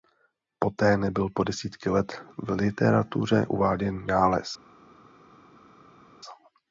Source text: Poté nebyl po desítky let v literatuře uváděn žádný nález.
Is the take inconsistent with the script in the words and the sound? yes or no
yes